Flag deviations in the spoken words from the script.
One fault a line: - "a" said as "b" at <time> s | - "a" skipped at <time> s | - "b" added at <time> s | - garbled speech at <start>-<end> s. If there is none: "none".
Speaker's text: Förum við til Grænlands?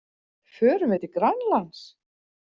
none